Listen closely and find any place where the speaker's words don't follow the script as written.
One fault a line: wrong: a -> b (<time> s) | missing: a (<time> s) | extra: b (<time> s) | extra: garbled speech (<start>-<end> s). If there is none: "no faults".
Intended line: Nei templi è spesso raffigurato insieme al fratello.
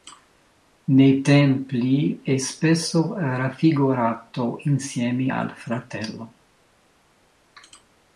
no faults